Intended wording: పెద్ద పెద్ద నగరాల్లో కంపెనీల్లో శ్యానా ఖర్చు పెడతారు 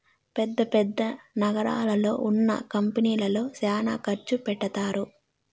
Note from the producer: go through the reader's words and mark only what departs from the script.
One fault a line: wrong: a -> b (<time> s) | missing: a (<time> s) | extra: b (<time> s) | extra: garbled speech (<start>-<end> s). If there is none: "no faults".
extra: ఉన్న (2.3 s)